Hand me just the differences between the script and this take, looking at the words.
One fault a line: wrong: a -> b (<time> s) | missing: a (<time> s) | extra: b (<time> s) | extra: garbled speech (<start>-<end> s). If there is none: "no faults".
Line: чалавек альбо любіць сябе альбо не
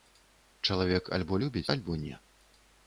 missing: сябе (1.7 s)